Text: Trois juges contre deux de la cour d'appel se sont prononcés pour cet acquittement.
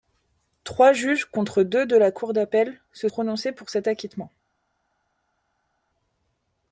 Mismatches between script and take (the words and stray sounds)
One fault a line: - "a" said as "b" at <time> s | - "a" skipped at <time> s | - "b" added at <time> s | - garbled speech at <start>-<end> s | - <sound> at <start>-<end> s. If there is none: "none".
- "sont" skipped at 3.1 s